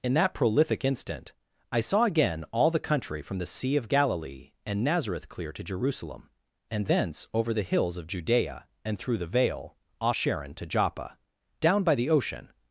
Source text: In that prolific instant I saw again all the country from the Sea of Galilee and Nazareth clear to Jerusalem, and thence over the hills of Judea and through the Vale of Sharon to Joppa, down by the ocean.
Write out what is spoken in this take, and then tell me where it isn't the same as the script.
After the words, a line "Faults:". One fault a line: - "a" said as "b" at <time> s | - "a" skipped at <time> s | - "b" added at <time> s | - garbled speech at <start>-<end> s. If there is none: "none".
In that prolific instant I saw again all the country from the Sea of Galilee and Nazareth clear to Jerusalem, and thence over the hills of Judea and through the Vale off Sharon to Joppa, down by the ocean.
Faults:
- "of" said as "off" at 10.0 s